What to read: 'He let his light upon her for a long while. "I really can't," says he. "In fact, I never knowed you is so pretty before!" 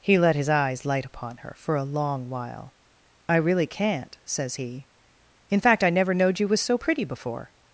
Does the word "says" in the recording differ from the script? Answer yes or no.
no